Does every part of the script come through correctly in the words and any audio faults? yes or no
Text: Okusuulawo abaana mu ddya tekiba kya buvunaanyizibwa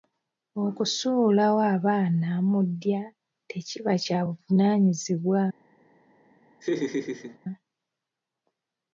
no